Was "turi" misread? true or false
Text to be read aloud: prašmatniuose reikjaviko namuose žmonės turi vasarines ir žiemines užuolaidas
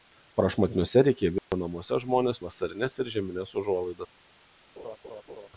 true